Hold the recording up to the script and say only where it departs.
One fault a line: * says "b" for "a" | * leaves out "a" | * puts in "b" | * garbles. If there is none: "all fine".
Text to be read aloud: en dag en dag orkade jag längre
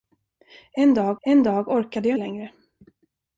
all fine